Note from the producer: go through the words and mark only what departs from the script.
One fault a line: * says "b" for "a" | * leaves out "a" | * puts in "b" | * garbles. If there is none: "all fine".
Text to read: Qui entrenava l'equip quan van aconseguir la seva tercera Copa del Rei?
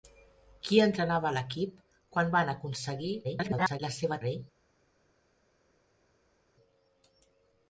* garbles
* leaves out "tercera Copa del"